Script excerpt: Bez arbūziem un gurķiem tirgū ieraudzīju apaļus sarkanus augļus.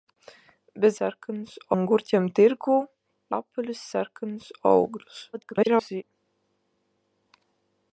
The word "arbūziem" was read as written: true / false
false